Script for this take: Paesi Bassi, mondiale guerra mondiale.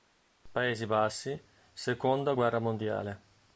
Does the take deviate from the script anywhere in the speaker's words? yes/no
yes